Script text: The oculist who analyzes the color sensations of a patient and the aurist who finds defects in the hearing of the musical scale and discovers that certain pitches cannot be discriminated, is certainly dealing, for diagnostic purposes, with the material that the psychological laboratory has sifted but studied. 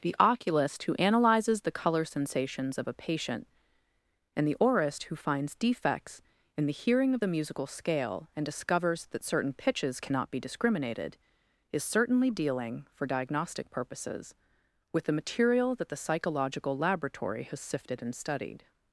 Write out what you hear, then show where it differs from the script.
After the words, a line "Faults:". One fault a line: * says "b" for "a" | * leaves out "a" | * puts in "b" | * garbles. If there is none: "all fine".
The oculist who analyzes the color sensations of a patient and the aurist who finds defects in the hearing of the musical scale and discovers that certain pitches cannot be discriminated, is certainly dealing, for diagnostic purposes, with the material that the psychological laboratory has sifted and studied.
Faults:
* says "and" for "but"